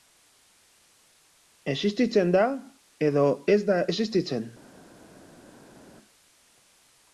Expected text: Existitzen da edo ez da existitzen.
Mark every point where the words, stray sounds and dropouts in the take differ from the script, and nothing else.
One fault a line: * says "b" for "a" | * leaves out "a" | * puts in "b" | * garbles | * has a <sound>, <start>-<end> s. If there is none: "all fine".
all fine